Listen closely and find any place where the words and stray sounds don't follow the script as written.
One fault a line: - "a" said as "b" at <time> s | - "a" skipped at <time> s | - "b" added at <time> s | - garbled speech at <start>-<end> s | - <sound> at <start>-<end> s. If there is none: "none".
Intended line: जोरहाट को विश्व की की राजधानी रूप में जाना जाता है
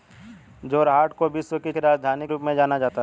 none